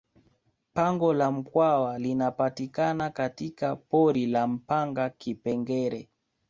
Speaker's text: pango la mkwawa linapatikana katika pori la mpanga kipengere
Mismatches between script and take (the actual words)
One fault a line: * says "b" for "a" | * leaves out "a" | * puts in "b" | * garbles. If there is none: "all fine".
all fine